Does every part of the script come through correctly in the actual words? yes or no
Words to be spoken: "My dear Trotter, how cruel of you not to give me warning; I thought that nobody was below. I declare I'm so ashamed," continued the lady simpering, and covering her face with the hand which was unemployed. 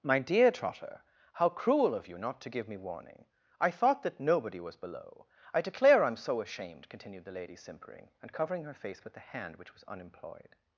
yes